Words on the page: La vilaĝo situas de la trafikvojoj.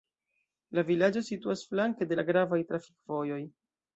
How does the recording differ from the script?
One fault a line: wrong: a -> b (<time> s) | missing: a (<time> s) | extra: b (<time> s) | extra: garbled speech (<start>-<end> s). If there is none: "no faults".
extra: flanke (1.7 s)
extra: gravaj (2.3 s)